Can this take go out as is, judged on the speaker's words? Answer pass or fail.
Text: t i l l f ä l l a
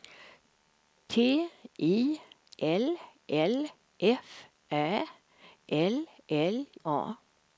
pass